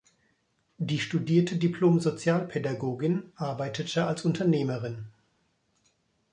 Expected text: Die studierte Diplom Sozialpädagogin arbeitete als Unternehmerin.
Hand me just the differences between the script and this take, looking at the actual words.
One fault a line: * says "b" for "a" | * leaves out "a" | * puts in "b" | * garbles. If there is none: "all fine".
all fine